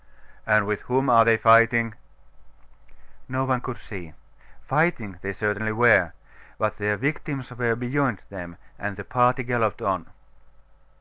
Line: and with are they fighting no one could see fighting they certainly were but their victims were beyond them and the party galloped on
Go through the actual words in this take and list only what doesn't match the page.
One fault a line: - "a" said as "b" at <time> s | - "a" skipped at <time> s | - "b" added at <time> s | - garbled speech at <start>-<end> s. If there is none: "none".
- "whom" added at 0.9 s